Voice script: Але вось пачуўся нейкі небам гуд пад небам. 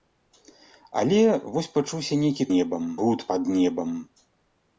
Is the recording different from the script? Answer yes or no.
no